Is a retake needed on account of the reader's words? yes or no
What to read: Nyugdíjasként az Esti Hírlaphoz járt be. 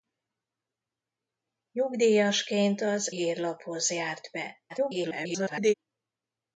yes